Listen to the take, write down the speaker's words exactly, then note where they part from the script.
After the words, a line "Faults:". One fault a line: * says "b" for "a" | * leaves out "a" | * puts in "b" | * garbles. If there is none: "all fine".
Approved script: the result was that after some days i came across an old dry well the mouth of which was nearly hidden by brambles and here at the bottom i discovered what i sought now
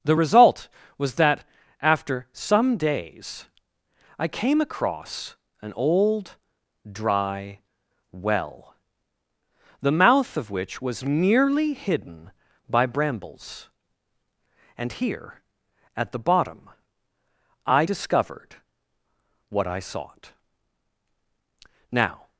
the result was that after some days i came across an old dry well the mouth of which was nearly hidden by brambles and here at the bottom i discovered what i sought now
Faults:
all fine